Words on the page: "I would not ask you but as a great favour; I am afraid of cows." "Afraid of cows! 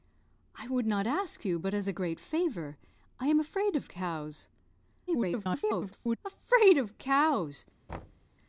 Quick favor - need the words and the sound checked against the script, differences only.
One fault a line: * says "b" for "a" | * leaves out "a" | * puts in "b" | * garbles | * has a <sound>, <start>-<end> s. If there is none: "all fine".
* garbles
* has a thud, 7.9-8.3 s